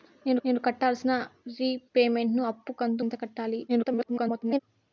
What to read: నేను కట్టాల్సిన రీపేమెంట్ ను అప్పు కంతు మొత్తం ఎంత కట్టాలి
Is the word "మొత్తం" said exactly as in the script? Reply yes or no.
no